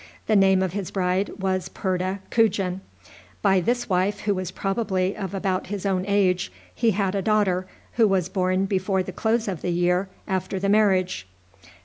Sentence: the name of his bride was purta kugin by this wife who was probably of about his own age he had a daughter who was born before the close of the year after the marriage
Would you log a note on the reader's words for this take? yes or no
no